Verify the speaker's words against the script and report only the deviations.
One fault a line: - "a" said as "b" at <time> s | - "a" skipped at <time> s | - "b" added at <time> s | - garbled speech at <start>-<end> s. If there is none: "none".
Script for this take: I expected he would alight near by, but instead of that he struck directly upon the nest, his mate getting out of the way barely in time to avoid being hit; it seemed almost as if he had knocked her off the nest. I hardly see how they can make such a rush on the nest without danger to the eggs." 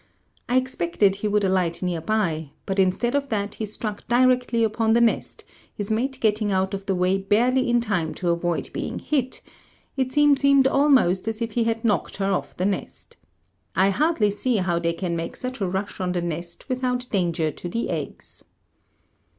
- "seemed" added at 10.4 s